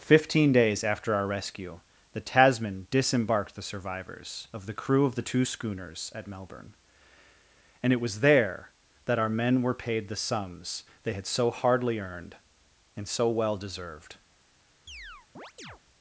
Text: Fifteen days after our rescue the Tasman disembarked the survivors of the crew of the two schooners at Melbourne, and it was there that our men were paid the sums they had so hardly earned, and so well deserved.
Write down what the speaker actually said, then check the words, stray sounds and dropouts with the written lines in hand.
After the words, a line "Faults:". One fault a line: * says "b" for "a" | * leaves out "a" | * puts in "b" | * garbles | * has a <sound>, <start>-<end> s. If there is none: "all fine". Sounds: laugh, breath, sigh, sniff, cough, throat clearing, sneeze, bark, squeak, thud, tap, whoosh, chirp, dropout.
Fifteen days after our rescue the Tasman disembarked the survivors of the crew of the two schooners at Melbourne, and it was there that our men were paid the sums they had so hardly earned, and so well deserved.
Faults:
* has a chirp, 14.9-15.8 s